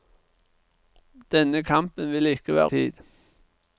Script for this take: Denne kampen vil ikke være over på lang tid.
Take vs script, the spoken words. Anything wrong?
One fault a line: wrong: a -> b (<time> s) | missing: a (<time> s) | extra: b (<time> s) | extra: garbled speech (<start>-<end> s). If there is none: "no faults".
missing: over på lang (2.7 s)